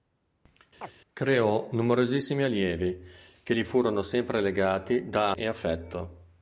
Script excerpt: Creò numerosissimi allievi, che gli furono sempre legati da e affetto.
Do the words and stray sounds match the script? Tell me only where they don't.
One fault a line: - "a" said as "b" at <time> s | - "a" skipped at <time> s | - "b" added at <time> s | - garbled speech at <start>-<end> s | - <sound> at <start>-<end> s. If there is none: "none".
- chirp at 0.8-0.9 s